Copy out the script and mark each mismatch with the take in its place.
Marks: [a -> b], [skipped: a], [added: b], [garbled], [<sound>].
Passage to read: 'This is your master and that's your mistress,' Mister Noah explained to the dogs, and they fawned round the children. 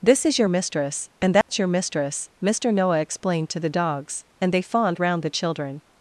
'This is your [master -> mistress] and that's [dropout] your mistress,' Mister Noah explained to the dogs, and they fawned round the children.